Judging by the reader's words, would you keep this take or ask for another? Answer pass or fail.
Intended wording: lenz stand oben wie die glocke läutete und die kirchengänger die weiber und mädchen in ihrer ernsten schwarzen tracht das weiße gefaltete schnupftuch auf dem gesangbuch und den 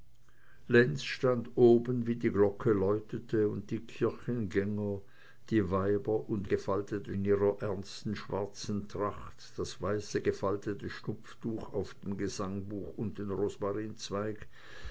fail